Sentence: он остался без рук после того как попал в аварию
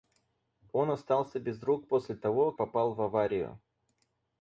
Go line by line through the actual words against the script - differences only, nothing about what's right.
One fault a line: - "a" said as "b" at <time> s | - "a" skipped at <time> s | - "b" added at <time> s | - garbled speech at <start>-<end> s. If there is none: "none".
- "как" skipped at 2.5 s